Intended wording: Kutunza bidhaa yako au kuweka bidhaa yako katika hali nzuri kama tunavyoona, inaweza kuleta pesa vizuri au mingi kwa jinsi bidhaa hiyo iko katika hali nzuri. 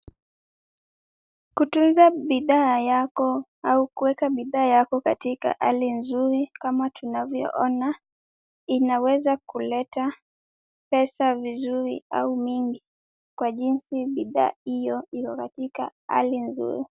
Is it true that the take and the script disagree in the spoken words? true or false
false